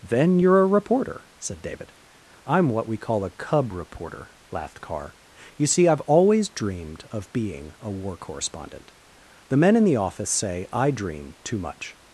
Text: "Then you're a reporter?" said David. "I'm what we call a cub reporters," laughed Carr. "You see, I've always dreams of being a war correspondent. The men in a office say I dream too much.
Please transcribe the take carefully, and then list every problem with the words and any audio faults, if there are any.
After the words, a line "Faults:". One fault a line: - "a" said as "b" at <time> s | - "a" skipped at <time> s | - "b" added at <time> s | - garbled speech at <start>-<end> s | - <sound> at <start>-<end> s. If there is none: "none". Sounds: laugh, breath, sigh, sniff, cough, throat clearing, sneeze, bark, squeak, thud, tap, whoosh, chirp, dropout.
"Then you're a reporter?" said David. "I'm what we call a cub reporter," laughed Carr. "You see, I've always dreamed of being a war correspondent. The men in the office say I dream too much.
Faults:
- "reporters" said as "reporter" at 3.7 s
- "dreams" said as "dreamed" at 6.5 s
- "a" said as "the" at 9.8 s